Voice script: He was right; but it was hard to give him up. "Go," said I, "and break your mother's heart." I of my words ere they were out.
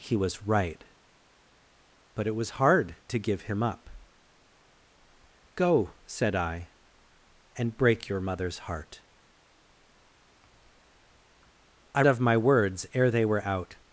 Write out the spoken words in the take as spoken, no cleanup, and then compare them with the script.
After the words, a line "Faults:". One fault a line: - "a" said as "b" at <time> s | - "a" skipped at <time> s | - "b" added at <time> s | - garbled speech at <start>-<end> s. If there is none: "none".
He was right; but it was hard to give him up. "Go," said I, "and break your mother's heart." I of my words ere they were out.
Faults:
none